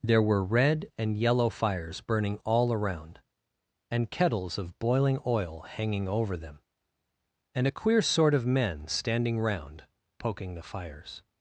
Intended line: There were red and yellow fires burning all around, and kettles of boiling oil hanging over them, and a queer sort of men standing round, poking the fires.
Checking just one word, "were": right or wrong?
right